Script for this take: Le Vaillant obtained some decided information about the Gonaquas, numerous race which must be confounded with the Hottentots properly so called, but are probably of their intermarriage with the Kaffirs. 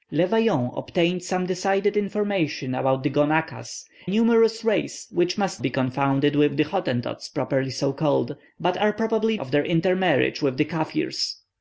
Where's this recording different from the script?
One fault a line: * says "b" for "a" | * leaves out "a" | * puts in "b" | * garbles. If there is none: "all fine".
all fine